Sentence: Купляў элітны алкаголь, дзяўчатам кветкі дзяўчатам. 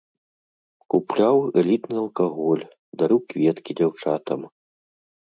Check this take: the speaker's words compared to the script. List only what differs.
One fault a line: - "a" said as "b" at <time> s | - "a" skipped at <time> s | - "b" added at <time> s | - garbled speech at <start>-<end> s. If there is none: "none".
- "дзяўчатам" said as "дарыў" at 3.0 s